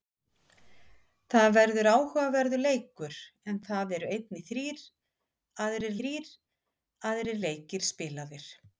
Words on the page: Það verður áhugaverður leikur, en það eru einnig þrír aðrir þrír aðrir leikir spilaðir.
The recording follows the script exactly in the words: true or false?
true